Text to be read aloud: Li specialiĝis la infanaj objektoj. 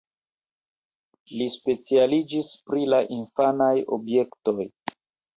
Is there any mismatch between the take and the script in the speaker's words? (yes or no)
yes